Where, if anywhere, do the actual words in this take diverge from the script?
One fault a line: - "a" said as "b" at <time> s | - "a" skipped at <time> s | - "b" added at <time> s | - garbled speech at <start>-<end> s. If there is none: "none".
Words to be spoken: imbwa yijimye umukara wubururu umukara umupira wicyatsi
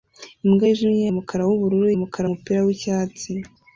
none